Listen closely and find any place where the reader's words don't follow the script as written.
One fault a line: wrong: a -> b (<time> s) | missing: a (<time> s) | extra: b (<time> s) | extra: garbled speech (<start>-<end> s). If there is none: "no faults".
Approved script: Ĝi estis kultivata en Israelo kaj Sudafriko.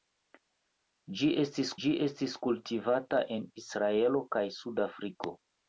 extra: ĝi estis (1.8 s)